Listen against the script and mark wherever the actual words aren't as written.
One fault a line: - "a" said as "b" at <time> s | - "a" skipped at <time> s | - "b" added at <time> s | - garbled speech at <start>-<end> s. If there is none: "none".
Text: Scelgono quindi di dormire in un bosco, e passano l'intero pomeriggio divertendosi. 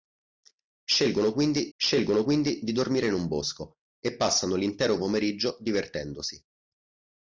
- "scelgono quindi" added at 1.7 s